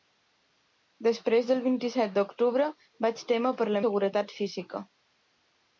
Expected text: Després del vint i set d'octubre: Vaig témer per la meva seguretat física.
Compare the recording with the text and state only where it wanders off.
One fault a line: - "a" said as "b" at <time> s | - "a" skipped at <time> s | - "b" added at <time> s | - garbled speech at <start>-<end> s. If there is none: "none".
- "meva" skipped at 3.8 s